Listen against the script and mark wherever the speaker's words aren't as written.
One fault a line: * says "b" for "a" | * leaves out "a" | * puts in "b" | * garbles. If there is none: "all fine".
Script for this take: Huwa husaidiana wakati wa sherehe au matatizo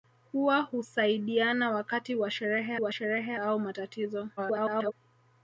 * puts in "wa sherehe"
* garbles